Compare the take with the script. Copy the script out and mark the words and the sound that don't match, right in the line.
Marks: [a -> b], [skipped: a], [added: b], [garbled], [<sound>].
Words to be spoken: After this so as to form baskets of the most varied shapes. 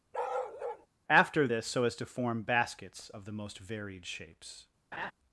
[bark] After this so as to form baskets of the most varied shapes. [laugh]